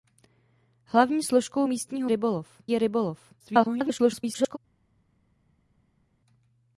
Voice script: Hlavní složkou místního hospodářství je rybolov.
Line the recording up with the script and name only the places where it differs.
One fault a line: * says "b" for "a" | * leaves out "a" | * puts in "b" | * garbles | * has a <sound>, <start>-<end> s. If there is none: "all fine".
* says "rybolov" for "hospodářství"
* garbles